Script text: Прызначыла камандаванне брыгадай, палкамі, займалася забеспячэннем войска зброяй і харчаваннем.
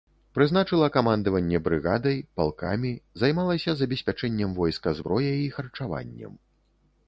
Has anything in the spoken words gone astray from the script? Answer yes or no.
no